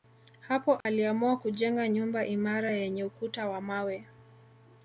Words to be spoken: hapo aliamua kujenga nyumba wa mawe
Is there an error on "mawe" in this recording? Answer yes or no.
no